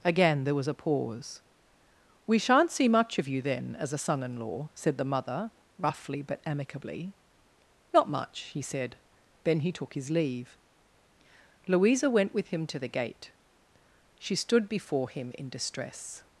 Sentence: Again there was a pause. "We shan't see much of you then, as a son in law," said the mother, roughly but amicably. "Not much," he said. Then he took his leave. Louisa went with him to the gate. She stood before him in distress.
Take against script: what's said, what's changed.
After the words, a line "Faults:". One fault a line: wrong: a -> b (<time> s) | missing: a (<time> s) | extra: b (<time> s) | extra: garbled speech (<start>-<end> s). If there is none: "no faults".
Again there was a pause. "We shan't see much of you then, as a son in law," said the mother, roughly but amicably. "Not much," he said. Then he took his leave. Louisa went with him to the gate. She stood before him in distress.
Faults:
no faults